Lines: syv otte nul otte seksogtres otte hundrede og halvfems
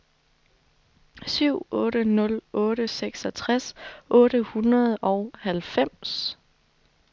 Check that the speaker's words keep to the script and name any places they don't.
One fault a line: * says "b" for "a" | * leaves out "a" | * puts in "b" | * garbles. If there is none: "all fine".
all fine